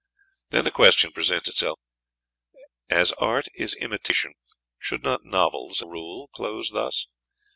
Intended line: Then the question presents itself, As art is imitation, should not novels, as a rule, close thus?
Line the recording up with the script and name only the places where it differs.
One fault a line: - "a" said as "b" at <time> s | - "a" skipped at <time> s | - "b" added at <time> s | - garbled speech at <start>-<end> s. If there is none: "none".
- "as" skipped at 5.8 s